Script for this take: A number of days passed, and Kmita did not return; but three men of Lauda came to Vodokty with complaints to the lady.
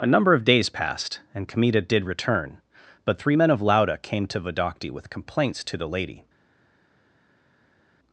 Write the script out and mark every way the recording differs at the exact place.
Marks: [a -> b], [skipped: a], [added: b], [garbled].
A number of days passed, and Kmita did [skipped: not] return; but three men of Lauda came to Vodokty with complaints to the lady.